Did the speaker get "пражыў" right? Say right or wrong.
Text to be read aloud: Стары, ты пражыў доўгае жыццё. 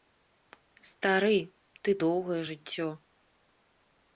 wrong